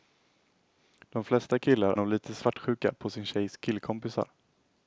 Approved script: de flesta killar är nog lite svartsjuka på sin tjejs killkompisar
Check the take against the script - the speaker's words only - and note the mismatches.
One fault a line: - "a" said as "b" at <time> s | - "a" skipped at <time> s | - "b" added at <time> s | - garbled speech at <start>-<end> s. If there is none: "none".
- "är" skipped at 1.9 s